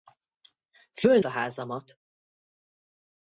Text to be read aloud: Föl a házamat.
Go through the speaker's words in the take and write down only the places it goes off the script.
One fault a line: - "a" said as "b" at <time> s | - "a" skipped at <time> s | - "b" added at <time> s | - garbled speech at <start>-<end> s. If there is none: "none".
none